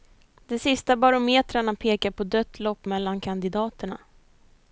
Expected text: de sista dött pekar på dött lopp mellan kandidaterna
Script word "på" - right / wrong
right